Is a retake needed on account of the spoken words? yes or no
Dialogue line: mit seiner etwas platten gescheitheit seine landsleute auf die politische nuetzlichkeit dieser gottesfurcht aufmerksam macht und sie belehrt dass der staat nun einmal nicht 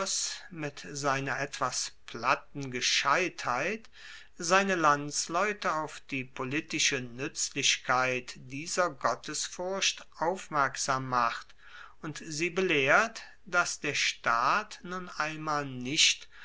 no